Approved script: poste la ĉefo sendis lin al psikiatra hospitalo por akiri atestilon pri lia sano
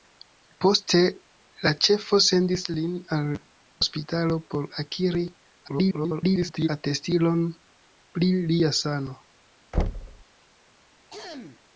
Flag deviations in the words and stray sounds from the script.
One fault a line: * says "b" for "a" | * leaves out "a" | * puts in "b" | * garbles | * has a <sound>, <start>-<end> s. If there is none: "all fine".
* leaves out "psikiatra"
* garbles
* has a thud, 9.7-10.2 s
* has a throat clearing, 11.1-11.6 s